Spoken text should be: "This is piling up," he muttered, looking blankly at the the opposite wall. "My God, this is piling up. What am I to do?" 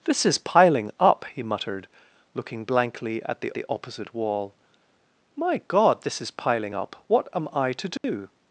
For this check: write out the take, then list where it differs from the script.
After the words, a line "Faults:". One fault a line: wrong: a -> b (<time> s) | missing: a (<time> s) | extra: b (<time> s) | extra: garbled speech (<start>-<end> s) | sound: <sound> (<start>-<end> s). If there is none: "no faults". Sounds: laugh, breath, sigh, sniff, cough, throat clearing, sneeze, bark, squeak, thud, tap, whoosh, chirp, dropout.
"This is piling up," he muttered, looking blankly at the the opposite wall. "My God, this is piling up. What am I to do?"
Faults:
sound: dropout (8.0-8.0 s)